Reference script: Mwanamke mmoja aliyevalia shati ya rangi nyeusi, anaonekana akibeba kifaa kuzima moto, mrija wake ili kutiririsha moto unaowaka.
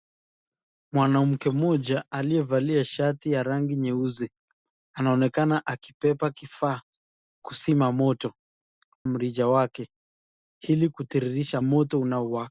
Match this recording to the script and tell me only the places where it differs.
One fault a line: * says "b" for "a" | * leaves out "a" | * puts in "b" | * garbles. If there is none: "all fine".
all fine